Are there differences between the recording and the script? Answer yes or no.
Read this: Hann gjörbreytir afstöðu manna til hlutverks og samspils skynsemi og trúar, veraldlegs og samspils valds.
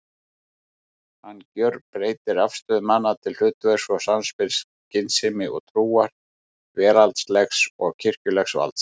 yes